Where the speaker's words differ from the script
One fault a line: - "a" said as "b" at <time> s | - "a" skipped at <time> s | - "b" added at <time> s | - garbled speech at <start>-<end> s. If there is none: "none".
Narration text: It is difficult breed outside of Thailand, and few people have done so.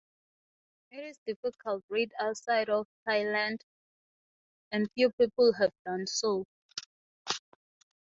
none